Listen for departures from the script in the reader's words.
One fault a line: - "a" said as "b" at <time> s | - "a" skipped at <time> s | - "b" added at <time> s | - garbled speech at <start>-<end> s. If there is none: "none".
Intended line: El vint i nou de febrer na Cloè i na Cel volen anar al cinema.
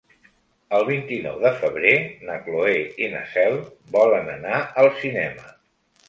none